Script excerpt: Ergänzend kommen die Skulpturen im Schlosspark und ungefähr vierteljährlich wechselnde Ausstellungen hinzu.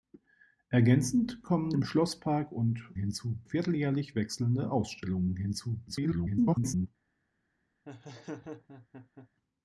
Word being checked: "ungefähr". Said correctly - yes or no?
no